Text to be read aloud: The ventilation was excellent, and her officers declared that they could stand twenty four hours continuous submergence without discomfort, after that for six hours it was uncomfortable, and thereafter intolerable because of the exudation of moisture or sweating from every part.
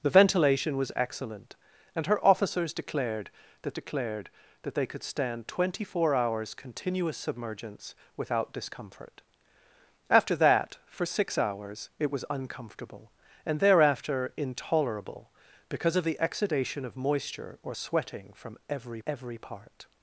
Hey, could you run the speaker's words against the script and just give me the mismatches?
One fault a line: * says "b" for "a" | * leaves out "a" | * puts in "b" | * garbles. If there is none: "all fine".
* puts in "declared that"
* puts in "every"